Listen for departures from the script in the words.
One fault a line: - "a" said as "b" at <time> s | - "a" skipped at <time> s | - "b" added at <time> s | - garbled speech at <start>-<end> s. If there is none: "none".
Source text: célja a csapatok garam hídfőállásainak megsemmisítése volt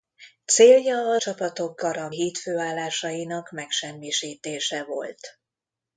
none